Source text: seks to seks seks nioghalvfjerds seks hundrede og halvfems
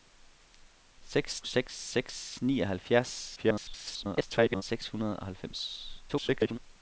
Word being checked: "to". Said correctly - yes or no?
no